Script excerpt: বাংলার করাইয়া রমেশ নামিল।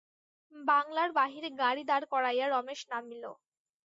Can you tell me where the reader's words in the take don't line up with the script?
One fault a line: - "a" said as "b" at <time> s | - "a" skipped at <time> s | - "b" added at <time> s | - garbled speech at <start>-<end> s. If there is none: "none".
- "বাহিরে গাড়ি দাঁড়" added at 1.2 s